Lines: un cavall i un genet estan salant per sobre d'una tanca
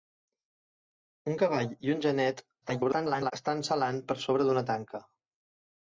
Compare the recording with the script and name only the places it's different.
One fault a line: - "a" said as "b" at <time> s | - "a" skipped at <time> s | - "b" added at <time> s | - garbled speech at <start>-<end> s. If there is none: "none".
- garbled speech at 2.6-3.3 s